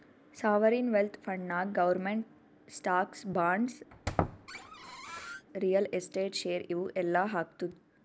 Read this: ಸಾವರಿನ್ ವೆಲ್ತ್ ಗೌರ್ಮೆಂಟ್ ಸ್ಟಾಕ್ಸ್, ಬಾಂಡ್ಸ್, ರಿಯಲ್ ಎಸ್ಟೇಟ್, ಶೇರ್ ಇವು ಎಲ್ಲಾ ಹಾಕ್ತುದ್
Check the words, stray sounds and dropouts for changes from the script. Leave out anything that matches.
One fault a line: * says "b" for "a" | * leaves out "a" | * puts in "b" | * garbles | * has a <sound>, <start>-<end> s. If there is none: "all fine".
* puts in "ಫಂಡ್ನಾಗ್"
* has a squeak, 3.9-5.5 s